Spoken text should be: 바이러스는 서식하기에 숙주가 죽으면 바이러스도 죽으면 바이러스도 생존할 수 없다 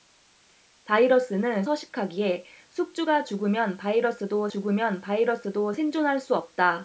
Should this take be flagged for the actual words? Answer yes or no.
no